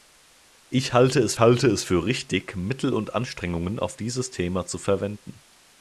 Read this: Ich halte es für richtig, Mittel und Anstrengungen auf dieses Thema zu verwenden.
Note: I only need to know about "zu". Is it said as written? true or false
true